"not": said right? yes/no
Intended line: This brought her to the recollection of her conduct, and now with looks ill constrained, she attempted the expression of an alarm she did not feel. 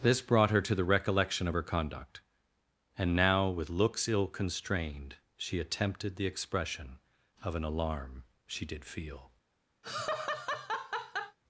no